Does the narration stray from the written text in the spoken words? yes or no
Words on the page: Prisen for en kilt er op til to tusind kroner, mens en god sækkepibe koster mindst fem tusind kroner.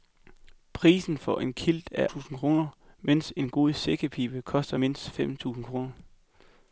yes